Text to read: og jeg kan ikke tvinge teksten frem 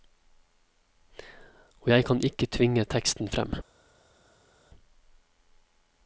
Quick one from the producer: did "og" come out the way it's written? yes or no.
yes